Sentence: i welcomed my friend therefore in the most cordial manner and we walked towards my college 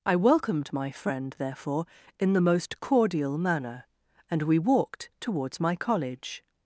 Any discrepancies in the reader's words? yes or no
no